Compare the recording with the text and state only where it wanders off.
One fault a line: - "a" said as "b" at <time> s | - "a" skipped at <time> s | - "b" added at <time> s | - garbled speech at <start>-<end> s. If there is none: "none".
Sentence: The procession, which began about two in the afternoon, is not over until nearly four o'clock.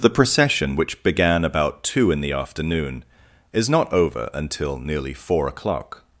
none